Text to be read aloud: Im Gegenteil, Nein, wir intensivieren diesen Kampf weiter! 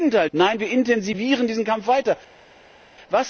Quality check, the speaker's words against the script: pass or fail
pass